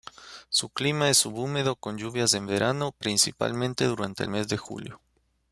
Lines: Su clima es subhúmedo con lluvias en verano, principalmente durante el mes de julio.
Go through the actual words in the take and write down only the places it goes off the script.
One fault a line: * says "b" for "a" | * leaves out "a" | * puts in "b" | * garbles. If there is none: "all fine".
all fine